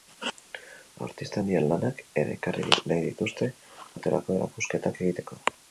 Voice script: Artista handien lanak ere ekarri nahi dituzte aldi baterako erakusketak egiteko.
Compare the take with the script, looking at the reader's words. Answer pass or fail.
fail